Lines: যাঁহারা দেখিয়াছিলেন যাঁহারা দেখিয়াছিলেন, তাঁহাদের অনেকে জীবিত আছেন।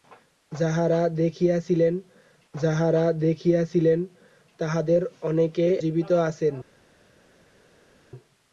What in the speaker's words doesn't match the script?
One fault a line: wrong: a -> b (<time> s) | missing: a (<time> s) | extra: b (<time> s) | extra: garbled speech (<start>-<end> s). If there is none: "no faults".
no faults